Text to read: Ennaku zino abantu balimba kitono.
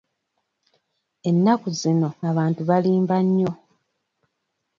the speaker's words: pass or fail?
fail